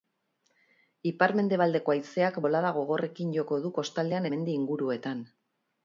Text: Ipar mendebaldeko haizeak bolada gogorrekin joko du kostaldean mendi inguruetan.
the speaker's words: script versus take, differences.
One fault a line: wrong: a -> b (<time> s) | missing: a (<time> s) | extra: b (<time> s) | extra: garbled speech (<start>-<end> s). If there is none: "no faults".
no faults